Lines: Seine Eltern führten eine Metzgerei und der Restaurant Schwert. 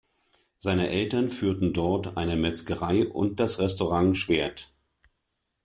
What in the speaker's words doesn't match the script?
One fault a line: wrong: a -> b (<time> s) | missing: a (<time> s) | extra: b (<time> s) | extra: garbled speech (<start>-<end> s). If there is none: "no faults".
extra: dort (1.7 s)
wrong: der -> das (3.4 s)